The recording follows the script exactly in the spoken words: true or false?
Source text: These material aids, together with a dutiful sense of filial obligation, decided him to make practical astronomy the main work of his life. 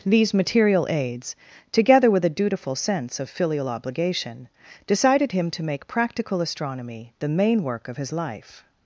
true